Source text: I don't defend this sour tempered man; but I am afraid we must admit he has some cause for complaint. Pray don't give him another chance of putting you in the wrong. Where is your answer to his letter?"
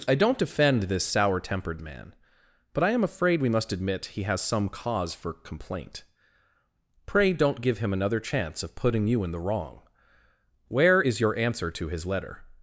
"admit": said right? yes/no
yes